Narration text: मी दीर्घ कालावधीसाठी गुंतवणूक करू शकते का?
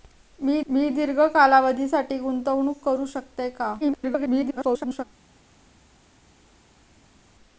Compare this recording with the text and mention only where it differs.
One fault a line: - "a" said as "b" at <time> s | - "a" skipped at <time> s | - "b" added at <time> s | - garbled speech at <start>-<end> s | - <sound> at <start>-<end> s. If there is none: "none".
- "मी" added at 0.7 s
- garbled speech at 3.8-5.0 s